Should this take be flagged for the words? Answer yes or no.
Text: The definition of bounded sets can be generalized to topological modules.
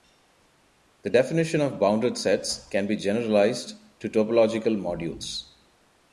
no